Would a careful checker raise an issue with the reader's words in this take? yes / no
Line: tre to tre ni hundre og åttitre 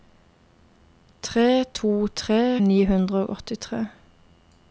no